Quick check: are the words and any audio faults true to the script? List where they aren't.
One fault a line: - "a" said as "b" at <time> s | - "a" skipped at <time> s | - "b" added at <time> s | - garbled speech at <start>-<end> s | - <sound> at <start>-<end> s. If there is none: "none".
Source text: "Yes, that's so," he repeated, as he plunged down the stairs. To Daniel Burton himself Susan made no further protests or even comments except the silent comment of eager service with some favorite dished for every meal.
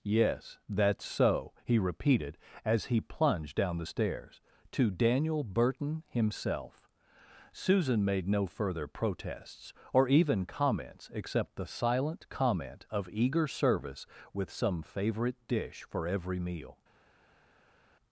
- "dished" said as "dish" at 15.5 s